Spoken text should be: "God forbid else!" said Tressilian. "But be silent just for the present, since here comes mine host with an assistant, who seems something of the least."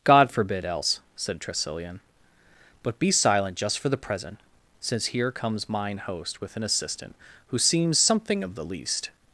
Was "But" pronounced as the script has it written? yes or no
yes